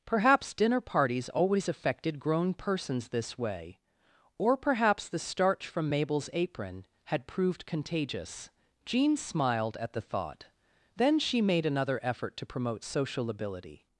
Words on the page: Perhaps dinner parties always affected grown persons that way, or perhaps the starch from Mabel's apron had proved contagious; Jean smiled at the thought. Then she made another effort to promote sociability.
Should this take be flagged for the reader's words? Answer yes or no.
yes